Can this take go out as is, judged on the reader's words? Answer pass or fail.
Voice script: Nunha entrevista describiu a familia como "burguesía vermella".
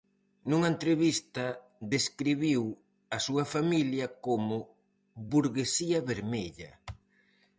fail